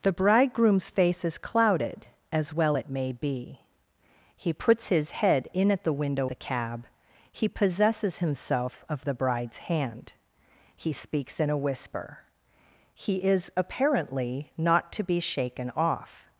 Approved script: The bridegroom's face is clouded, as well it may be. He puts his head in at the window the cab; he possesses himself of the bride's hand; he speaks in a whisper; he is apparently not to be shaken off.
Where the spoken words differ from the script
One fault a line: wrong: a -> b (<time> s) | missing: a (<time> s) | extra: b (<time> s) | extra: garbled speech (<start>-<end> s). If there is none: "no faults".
no faults